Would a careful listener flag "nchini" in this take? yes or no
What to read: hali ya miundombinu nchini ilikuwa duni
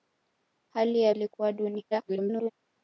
yes